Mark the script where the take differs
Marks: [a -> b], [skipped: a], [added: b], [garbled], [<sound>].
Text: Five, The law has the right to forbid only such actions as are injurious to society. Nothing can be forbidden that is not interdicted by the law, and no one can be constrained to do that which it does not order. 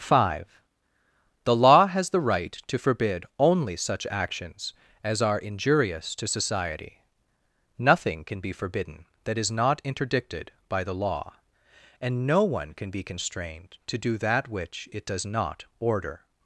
Five, The law has the right to forbid only such actions as are injurious to society. Nothing can be forbidden that is not interdicted by the law, and no one can be constrained to do that which it does not order.